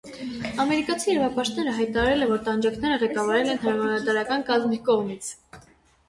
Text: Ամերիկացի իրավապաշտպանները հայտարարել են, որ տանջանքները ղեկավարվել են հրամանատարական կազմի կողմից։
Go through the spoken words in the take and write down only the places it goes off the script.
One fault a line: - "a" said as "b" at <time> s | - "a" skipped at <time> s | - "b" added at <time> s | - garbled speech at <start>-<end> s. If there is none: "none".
none